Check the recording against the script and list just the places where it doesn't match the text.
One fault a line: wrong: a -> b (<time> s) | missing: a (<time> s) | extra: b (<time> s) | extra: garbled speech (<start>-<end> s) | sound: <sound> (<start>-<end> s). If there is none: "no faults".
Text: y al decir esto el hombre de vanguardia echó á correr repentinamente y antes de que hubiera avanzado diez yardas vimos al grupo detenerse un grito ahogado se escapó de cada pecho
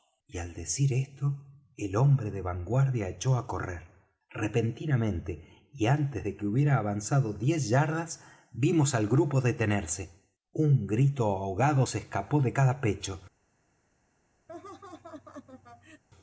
sound: laugh (14.5-16.0 s)